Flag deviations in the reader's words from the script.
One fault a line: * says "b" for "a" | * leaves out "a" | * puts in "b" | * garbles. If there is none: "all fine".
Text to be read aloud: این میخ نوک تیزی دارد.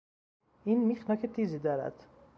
all fine